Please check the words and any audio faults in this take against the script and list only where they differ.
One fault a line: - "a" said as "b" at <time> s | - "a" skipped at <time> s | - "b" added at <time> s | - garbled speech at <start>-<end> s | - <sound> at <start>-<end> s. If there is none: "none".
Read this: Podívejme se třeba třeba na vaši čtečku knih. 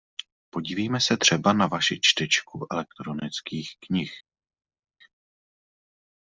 - "třeba" skipped at 1.5 s
- "elektronických" added at 2.7 s